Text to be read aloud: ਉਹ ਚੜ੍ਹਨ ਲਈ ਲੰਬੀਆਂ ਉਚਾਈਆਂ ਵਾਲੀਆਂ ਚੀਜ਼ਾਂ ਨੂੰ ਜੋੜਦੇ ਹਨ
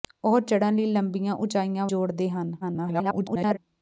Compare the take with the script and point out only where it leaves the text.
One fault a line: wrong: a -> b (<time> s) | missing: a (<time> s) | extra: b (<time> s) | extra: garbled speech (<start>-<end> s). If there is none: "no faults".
missing: ਵਾਲੀਆਂ ਚੀਜ਼ਾਂ ਨੂੰ (1.9 s)
extra: garbled speech (2.6-3.6 s)